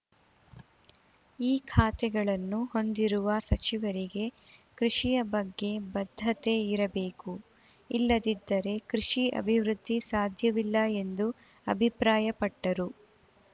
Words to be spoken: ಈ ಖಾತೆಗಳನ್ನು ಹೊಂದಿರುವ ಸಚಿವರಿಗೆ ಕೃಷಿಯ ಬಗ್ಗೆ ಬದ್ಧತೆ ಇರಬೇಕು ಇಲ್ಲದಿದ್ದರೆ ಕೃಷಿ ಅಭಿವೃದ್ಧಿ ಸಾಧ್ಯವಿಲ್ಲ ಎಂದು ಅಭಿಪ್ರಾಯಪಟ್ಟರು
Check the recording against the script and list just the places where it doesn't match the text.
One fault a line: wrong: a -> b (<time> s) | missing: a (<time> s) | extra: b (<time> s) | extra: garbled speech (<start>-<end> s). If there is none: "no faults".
no faults